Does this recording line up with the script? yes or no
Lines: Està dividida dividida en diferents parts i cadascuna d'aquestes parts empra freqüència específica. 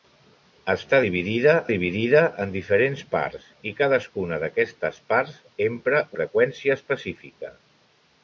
yes